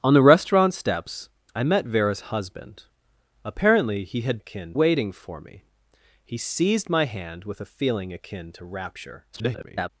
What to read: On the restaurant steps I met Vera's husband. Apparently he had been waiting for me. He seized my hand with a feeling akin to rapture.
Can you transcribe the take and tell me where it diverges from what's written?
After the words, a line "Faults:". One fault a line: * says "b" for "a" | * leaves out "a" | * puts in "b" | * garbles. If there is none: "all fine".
On the restaurant steps I met Vera's husband. Apparently he had akin waiting for me. He seized my hand with a feeling akin to rapture. [garbled]
Faults:
* says "akin" for "been"
* garbles